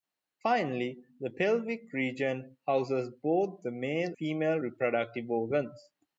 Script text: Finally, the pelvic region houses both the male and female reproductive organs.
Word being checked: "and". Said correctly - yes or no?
no